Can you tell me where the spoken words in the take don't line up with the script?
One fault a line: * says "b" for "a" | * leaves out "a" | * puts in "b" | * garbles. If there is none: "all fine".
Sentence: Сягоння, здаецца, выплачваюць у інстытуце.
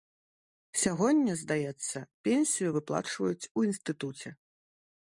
* puts in "пенсію"